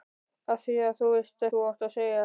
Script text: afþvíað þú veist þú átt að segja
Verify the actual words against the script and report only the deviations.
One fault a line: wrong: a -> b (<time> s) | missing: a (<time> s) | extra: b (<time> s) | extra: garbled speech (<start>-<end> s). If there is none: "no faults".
no faults